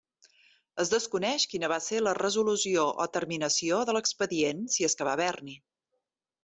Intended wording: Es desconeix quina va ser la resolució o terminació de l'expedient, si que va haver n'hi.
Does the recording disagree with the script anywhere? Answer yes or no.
yes